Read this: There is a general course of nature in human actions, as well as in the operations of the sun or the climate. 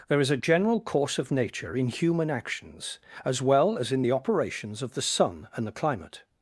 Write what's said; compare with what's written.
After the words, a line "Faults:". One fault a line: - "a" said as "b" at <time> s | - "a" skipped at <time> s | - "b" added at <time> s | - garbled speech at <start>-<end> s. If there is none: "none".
There is a general course of nature in human actions, as well as in the operations of the sun and the climate.
Faults:
- "or" said as "and" at 5.6 s